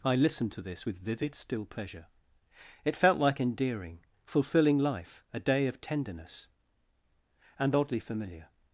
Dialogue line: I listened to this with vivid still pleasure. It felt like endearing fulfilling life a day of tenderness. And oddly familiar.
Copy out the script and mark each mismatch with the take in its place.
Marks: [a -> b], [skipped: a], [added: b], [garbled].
I listened to this with vivid still pleasure. It felt like endearing fulfilling life a day of tenderness. And oddly familiar.